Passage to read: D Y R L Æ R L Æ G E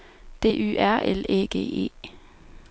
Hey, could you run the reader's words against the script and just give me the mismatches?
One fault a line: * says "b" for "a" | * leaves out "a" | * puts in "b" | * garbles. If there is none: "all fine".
* leaves out "R L Æ"